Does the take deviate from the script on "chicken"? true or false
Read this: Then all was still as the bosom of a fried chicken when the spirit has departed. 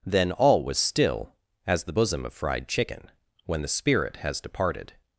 false